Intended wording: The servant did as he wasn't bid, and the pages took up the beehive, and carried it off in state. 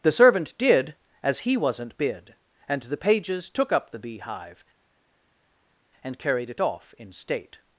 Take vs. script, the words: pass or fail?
pass